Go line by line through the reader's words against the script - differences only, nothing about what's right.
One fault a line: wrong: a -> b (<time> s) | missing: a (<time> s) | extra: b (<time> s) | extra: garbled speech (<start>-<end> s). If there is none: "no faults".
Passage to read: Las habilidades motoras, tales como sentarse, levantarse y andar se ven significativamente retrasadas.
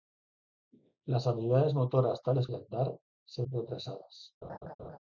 missing: como sentarse levantarse (2.5 s)
missing: ven significativamente (3.4 s)